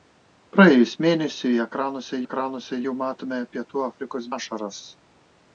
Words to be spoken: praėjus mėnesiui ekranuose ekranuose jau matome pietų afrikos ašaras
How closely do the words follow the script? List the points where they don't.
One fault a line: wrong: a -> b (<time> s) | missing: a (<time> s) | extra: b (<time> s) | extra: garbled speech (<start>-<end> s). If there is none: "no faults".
no faults